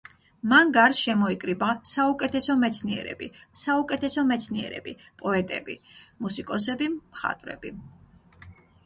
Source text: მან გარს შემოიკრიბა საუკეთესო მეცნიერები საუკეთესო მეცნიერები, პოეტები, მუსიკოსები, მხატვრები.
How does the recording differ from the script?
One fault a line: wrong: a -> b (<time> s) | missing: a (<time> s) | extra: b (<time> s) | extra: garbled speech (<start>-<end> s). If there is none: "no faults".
no faults